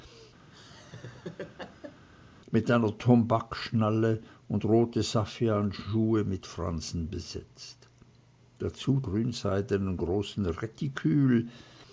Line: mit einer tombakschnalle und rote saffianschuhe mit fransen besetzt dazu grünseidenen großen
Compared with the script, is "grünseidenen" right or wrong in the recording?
right